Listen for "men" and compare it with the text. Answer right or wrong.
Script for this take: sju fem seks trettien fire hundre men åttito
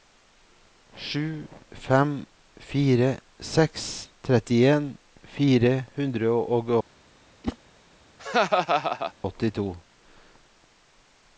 wrong